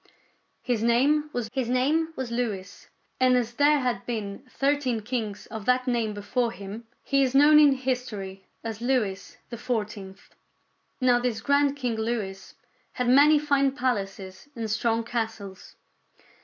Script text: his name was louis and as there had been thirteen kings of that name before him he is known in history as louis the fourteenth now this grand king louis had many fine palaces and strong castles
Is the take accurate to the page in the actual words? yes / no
no